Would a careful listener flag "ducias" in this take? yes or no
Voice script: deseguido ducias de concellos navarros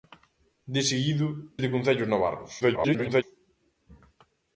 yes